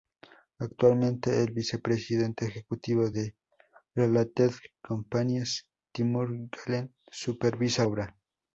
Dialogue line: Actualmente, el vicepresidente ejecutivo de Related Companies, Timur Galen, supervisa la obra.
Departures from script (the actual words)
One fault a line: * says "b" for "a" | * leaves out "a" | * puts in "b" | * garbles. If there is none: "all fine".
* leaves out "la"